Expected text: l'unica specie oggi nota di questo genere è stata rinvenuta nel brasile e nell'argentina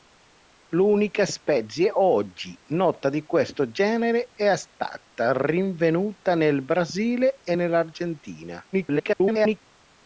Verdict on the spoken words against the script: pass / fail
fail